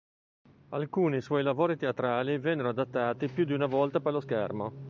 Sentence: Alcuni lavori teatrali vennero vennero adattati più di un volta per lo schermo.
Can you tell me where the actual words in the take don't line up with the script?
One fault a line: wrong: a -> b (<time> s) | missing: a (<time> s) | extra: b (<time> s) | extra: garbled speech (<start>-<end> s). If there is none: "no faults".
extra: suoi (1.2 s)
missing: vennero (2.7 s)
wrong: un -> una (3.5 s)